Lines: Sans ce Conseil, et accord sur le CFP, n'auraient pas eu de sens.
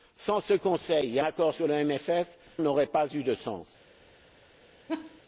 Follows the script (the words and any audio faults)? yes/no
no